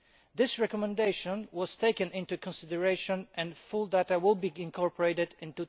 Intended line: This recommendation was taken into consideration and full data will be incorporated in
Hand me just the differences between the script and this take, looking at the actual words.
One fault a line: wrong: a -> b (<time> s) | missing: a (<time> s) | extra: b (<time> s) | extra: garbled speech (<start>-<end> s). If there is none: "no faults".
no faults